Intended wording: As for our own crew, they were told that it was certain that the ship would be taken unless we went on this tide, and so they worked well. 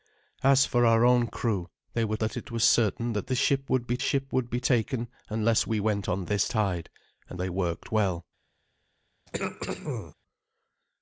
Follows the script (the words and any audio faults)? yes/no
no